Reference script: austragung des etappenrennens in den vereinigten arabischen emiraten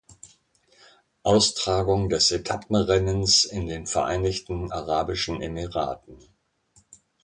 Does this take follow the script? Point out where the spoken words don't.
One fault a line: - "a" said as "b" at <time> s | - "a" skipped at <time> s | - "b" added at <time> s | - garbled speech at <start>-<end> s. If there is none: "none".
none